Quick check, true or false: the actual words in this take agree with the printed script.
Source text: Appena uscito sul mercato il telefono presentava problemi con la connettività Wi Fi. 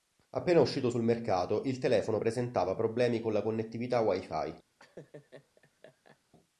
true